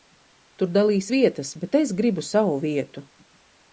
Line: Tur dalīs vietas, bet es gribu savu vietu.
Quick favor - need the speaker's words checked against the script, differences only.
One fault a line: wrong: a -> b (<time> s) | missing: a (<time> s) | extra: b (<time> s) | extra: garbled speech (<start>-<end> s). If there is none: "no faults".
no faults